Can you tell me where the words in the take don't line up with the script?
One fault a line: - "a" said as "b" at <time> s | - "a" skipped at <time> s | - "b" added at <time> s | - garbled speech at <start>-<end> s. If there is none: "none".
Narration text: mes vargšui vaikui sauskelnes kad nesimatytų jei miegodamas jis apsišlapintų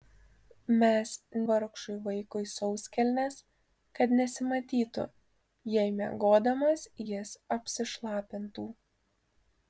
none